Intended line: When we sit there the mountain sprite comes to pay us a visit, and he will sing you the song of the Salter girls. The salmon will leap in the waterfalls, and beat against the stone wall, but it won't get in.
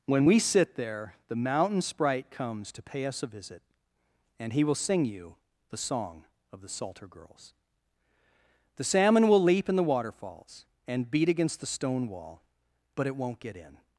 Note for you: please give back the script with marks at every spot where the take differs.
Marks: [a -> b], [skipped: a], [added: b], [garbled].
When we sit there the mountain sprite comes to pay us a visit, and he will sing you the song of the Salter girls. The salmon will leap in the waterfalls, and beat against the stone wall, but it won't get in.